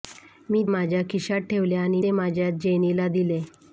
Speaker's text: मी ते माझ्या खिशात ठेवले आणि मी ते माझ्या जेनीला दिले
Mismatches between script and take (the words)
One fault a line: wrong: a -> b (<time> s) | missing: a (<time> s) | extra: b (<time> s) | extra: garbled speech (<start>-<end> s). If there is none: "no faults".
missing: ते (0.6 s)
missing: मी (2.0 s)